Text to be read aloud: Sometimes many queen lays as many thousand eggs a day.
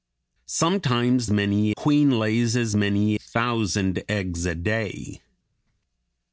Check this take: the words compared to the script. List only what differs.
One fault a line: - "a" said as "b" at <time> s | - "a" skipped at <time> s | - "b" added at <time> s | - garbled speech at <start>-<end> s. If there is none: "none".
none